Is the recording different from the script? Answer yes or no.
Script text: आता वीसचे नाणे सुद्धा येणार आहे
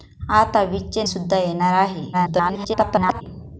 yes